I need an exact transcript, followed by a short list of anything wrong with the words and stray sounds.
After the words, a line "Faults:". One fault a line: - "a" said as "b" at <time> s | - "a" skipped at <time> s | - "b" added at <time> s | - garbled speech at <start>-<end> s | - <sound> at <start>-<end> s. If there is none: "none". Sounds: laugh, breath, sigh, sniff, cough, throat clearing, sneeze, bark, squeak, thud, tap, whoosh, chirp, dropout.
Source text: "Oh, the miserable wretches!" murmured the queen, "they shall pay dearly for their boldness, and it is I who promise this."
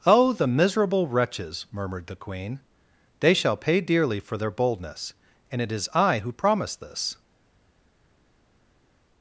"Oh, the miserable wretches!" murmured the queen, "they shall pay dearly for their boldness, and it is I who promise this."
Faults:
none